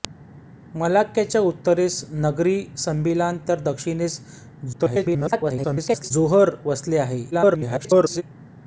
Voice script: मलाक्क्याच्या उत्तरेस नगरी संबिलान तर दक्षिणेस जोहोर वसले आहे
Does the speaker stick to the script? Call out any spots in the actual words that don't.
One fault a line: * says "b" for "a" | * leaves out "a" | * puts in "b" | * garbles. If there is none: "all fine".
* garbles
* garbles